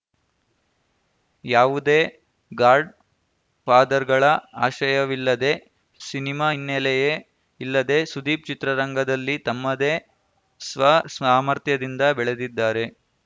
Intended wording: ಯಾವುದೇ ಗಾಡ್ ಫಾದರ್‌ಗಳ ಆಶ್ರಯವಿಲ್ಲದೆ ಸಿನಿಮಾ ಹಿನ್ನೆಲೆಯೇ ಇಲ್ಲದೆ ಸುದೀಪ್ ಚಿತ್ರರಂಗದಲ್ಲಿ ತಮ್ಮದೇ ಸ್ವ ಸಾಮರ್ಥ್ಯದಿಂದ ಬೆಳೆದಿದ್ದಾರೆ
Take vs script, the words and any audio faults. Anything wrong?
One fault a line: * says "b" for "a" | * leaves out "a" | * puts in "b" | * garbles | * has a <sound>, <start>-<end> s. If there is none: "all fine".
all fine